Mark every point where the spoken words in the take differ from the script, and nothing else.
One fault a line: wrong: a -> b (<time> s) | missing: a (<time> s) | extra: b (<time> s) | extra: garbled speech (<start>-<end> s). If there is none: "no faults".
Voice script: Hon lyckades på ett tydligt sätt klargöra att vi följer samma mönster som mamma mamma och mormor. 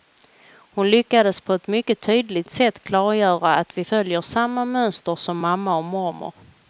extra: mycket (1.7 s)
missing: mamma (5.8 s)